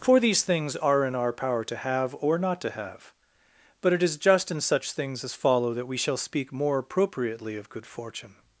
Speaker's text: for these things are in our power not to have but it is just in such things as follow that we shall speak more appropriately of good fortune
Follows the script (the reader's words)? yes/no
no